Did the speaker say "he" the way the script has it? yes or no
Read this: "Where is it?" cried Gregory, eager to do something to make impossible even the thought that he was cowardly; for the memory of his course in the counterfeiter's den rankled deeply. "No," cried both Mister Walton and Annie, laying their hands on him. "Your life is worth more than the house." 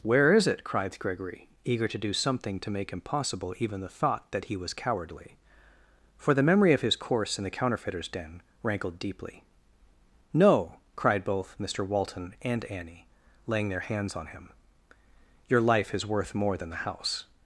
yes